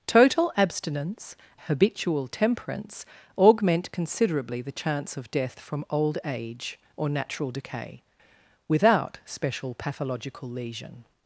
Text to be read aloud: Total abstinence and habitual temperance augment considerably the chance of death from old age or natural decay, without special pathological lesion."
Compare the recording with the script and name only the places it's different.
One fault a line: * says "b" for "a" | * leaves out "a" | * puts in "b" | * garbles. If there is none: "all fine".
* leaves out "and"